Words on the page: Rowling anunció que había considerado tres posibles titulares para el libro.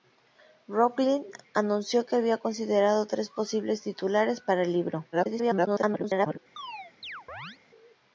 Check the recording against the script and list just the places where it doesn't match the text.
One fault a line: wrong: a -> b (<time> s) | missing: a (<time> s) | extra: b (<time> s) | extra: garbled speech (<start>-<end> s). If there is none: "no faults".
extra: garbled speech (5.1-6.4 s)